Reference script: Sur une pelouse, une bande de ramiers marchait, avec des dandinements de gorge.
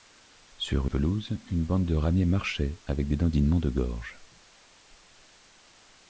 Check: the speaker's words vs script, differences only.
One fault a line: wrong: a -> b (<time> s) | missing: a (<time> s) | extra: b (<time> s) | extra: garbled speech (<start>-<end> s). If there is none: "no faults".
missing: une (0.9 s)